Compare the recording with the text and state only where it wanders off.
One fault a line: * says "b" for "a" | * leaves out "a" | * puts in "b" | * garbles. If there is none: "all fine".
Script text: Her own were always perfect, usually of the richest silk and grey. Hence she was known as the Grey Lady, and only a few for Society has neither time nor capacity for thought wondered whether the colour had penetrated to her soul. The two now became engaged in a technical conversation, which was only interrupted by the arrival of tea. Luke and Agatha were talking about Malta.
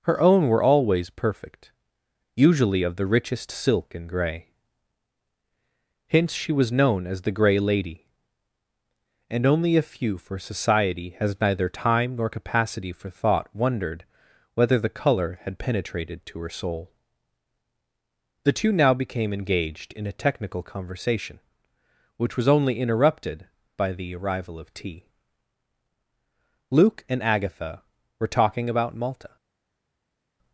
all fine